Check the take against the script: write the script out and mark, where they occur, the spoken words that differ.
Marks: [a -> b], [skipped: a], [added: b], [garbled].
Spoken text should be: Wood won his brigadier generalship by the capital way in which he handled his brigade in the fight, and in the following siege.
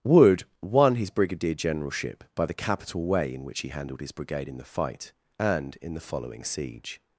Wood won his brigadier generalship by the capital way in which he handled his brigade in the fight, and in the following siege.